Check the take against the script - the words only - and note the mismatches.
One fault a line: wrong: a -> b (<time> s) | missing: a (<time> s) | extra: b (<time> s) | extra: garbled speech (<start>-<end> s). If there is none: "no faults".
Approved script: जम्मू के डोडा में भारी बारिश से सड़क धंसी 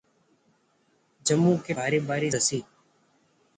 missing: डोडा में (1.7 s)
missing: से सड़क (2.4 s)